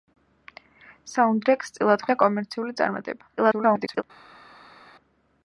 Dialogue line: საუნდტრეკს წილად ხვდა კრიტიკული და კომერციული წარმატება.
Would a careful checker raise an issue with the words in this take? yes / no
yes